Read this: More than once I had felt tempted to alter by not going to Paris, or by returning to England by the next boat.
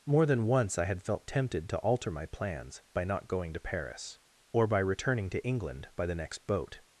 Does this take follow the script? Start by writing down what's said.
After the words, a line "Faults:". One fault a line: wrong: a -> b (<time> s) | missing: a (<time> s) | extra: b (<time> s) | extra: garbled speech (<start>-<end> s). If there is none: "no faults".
More than once I had felt tempted to alter my plans by not going to Paris, or by returning to England by the next boat.
Faults:
extra: my plans (2.1 s)